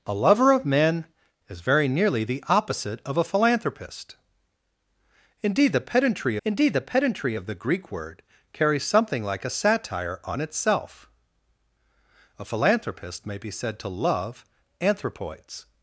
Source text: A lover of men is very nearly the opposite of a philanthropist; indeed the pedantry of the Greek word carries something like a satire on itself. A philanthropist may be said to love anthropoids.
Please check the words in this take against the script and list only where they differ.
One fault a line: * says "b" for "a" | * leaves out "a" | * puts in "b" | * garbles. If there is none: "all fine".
* puts in "indeed the pedantry"